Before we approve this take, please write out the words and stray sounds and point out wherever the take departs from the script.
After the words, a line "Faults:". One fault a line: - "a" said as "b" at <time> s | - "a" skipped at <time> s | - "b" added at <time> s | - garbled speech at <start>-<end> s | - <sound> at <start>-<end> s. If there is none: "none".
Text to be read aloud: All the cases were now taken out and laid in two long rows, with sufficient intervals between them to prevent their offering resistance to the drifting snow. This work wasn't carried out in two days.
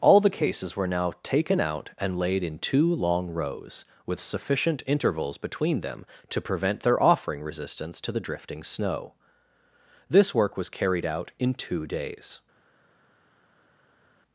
All the cases were now taken out and laid in two long rows, with sufficient intervals between them to prevent their offering resistance to the drifting snow. This work was carried out in two days.
Faults:
- "wasn't" said as "was" at 10.6 s